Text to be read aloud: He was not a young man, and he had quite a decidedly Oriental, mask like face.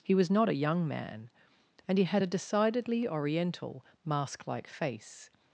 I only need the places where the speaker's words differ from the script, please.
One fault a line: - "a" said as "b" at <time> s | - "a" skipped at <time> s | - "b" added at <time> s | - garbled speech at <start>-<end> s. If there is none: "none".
- "quite" skipped at 2.2 s